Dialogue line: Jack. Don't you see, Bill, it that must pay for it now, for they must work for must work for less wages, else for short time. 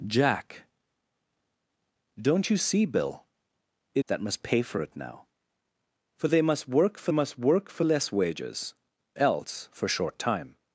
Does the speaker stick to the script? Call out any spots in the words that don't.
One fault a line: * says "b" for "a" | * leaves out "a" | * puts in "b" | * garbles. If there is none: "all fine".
all fine